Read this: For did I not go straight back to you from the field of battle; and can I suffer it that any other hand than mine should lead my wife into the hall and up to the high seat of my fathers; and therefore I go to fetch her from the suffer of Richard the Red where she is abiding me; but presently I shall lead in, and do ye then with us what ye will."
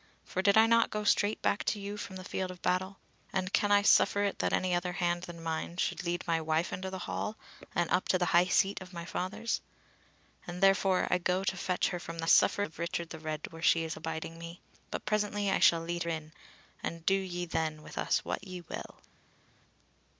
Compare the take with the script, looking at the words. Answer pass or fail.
pass